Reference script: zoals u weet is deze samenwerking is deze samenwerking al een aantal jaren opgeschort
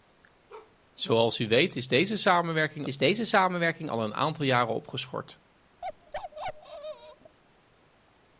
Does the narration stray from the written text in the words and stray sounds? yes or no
yes